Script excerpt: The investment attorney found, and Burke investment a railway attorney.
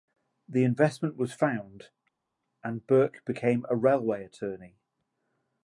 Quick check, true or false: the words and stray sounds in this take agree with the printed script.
false